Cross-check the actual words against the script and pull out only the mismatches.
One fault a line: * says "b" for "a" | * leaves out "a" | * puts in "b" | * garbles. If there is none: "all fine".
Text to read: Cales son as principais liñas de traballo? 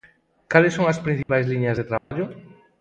all fine